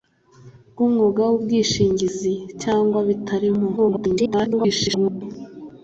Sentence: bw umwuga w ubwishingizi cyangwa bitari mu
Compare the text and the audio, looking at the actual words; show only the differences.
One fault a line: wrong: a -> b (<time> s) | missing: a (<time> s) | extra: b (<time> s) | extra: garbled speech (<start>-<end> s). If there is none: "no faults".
extra: garbled speech (3.8-5.2 s)